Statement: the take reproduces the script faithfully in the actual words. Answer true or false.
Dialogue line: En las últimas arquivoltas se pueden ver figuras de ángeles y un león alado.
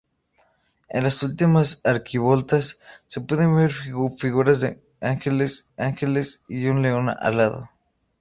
false